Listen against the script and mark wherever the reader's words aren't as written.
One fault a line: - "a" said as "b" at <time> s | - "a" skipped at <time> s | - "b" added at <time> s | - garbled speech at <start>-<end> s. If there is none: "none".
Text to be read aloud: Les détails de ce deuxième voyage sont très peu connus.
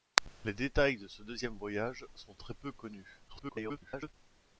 - garbled speech at 3.3-4.1 s